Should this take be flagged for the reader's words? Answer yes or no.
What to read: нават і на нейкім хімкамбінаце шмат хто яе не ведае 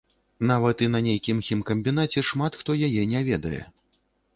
no